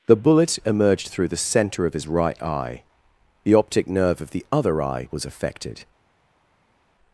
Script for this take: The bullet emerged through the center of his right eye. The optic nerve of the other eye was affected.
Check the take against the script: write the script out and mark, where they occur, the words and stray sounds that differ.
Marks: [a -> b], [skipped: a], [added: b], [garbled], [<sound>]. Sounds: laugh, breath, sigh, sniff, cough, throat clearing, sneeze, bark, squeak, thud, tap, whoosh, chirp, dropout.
The bullet emerged through the center of his right eye. The optic nerve of the other eye was affected.